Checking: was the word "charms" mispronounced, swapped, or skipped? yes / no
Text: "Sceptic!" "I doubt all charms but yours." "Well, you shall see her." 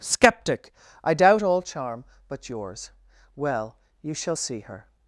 yes